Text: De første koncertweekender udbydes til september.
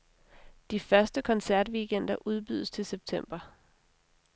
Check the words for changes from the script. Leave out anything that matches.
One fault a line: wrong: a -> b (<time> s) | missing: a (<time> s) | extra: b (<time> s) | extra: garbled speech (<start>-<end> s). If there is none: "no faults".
no faults